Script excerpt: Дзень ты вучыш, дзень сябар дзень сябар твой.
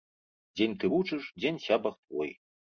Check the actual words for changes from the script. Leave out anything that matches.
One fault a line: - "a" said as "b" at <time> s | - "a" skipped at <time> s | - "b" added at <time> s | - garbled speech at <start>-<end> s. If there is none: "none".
- "дзень сябар" skipped at 1.9 s